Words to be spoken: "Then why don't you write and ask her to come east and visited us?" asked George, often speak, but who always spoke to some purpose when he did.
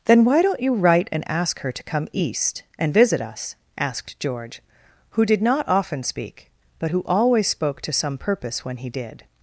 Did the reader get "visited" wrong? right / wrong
wrong